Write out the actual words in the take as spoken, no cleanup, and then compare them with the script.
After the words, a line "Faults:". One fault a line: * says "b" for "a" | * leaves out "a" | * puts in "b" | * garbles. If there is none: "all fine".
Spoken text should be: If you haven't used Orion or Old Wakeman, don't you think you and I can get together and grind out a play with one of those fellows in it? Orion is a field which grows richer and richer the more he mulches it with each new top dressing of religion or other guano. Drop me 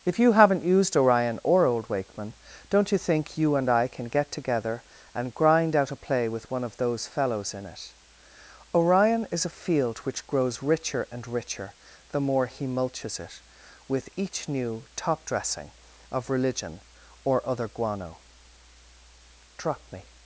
If you haven't used Orion or Old Wakeman, don't you think you and I can get together and grind out a play with one of those fellows in it? Orion is a field which grows richer and richer the more he mulches it with each new top dressing of religion or other guano. Drop me
Faults:
all fine